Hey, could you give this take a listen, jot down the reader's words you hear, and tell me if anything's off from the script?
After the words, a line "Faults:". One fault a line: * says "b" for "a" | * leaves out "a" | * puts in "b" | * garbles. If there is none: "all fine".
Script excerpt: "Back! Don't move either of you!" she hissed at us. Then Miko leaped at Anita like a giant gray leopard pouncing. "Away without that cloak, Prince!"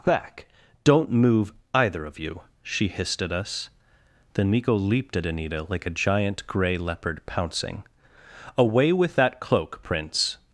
"Back! Don't move either of you!" she hissed at us. Then Miko leaped at Anita like a giant gray leopard pouncing. "Away with that cloak, Prince!"
Faults:
* says "with" for "without"